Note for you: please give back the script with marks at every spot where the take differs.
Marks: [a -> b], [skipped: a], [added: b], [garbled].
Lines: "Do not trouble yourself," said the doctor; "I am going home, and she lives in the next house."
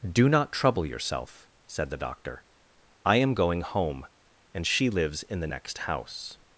"Do not trouble yourself," said the doctor; "I am going home, and she lives in the next house."